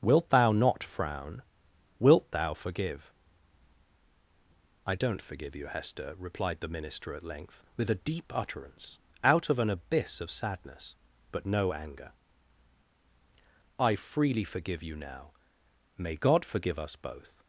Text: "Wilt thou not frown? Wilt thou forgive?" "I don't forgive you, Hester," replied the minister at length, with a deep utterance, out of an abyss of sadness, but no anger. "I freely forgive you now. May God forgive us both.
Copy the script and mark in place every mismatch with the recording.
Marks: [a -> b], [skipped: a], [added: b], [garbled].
"Wilt thou not frown? Wilt thou forgive?" "I don't forgive you, Hester," replied the minister at length, with a deep utterance, out of an abyss of sadness, but no anger. "I freely forgive you now. May God forgive us both.